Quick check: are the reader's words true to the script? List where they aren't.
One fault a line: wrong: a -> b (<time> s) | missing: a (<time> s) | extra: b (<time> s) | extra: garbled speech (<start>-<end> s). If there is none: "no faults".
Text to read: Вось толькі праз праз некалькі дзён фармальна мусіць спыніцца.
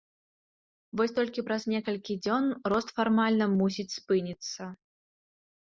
missing: праз (1.6 s)
extra: рост (2.7 s)